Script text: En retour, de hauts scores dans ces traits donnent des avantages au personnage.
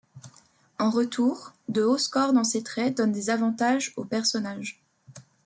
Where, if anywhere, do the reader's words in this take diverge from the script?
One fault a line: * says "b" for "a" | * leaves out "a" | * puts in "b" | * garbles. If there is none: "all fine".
all fine